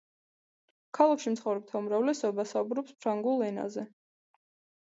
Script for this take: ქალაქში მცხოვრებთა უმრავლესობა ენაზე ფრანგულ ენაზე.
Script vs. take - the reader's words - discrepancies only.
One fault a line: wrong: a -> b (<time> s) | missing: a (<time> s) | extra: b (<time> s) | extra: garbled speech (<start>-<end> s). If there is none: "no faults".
wrong: ენაზე -> საუბრობს (2.5 s)